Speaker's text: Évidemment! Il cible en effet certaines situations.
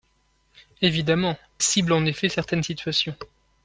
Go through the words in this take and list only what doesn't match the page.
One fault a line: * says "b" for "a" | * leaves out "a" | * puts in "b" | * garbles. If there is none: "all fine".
* leaves out "Il"